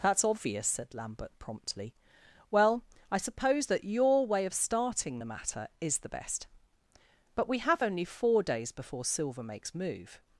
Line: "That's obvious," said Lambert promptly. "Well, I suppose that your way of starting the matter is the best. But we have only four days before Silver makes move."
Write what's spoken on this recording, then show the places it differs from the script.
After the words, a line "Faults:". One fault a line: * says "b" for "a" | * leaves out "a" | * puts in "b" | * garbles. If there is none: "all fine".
"That's obvious," said Lambert promptly. "Well, I suppose that your way of starting the matter is the best. But we have only four days before Silver makes move."
Faults:
all fine